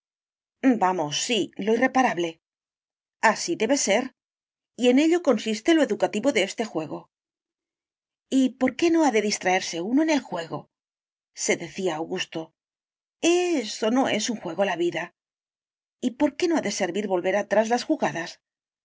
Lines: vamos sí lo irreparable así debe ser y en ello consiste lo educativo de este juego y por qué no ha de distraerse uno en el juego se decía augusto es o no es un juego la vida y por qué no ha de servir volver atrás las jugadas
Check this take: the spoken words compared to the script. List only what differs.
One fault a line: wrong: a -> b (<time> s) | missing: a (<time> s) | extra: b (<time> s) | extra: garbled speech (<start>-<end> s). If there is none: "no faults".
no faults